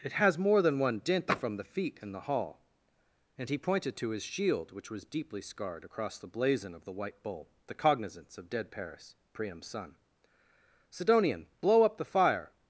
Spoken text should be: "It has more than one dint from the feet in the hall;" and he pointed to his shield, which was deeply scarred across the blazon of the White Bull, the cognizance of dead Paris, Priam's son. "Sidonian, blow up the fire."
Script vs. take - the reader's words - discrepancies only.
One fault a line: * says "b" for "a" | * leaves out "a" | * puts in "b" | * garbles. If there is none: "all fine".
all fine